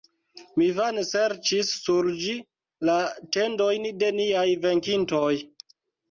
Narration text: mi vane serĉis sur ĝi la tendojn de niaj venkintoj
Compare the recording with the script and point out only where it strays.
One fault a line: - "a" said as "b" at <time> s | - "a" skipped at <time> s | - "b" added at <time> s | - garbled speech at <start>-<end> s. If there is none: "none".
none